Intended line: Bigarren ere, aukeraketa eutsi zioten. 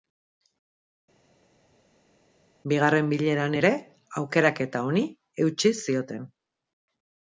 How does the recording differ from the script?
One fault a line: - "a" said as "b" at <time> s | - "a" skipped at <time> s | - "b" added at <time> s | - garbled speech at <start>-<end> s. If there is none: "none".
- "bileran" added at 3.1 s
- "honi" added at 4.9 s